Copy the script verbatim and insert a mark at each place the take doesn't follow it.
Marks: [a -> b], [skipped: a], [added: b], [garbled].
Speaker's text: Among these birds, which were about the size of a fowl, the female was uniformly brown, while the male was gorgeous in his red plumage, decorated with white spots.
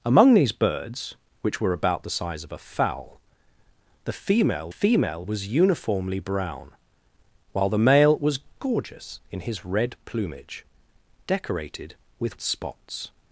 Among these birds, which were about the size of a fowl, the female [added: female] was uniformly brown, while the male was gorgeous in his red plumage, decorated with [skipped: white] spots.